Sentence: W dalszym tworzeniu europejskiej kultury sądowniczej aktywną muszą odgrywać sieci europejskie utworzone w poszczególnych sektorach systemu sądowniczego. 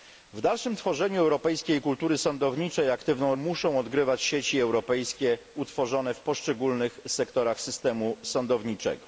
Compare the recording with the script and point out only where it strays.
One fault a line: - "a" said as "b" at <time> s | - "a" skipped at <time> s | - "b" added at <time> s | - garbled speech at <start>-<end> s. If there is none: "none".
none